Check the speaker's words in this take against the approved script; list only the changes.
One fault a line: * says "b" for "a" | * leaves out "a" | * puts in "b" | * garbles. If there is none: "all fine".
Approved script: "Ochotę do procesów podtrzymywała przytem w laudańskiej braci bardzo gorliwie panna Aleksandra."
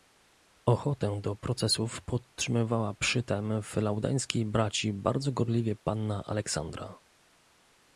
all fine